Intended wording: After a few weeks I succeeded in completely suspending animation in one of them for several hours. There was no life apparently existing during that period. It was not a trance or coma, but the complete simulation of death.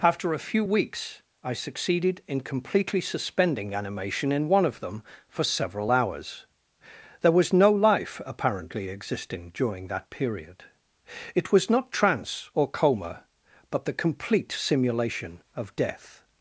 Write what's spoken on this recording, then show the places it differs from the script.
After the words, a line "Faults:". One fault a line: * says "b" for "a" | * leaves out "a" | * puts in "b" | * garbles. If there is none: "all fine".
After a few weeks I succeeded in completely suspending animation in one of them for several hours. There was no life apparently existing during that period. It was not trance or coma, but the complete simulation of death.
Faults:
* leaves out "a"